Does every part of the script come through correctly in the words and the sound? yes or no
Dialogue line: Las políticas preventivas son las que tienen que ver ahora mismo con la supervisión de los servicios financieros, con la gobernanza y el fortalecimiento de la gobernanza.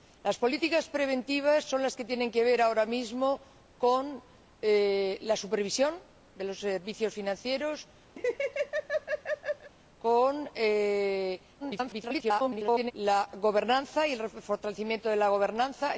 no